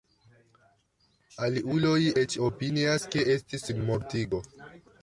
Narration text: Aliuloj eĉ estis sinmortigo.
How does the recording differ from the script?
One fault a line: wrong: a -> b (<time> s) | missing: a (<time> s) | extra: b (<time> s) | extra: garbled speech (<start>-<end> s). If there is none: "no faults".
extra: opinias ke (2.5 s)